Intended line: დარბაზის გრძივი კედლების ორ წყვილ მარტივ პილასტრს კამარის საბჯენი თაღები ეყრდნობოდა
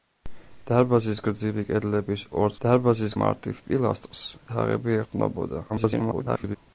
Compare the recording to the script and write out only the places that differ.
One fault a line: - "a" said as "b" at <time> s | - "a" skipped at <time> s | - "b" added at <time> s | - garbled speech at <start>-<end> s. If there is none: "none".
- "წყვილ" said as "დარბაზის" at 2.6 s
- "კამარის საბჯენი" skipped at 4.2 s
- garbled speech at 5.7-6.6 s